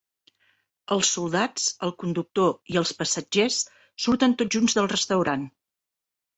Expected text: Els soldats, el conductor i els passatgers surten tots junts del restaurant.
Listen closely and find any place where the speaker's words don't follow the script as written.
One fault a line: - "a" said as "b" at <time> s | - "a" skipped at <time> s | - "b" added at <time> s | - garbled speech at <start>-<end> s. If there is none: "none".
none